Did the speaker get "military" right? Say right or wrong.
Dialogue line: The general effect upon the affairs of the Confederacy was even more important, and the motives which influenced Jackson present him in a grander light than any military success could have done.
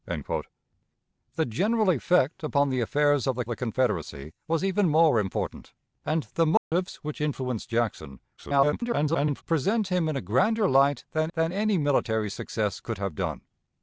right